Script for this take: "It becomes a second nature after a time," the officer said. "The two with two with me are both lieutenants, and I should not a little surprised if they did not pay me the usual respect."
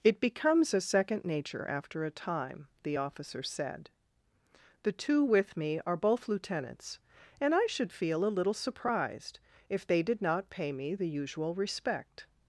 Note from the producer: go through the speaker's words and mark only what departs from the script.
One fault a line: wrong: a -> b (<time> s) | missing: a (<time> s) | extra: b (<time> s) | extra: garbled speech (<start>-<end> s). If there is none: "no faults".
missing: two with (5.6 s)
wrong: not -> feel (7.9 s)